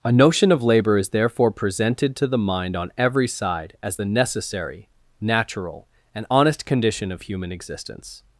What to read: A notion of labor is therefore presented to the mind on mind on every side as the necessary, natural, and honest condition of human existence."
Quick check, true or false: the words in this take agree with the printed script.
false